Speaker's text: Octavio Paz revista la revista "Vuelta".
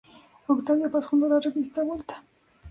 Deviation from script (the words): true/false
true